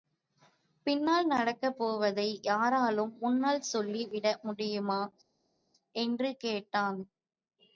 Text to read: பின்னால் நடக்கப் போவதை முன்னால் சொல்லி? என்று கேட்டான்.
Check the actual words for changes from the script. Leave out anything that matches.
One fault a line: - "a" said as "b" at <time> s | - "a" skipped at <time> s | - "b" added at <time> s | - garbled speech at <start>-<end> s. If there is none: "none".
- "யாராலும்" added at 2.4 s
- "விட முடியுமா" added at 4.1 s